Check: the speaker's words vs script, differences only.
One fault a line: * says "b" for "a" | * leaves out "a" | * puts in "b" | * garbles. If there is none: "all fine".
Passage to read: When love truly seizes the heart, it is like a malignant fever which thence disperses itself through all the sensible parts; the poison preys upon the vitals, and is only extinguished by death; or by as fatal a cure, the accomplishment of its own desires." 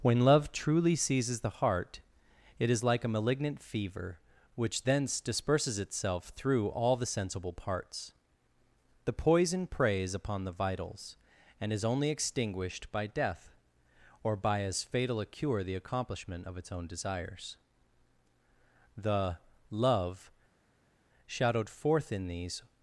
* puts in "The love shadowed forth in these"